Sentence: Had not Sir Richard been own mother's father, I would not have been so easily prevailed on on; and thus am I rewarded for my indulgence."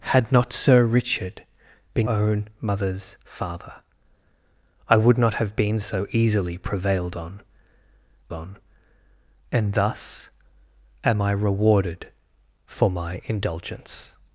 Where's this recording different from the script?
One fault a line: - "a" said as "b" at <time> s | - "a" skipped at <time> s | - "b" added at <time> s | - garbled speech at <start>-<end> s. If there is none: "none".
none